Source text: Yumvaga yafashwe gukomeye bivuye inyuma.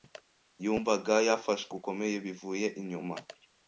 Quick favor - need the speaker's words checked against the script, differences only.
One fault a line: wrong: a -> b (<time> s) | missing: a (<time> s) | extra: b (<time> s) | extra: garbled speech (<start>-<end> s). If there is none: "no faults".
no faults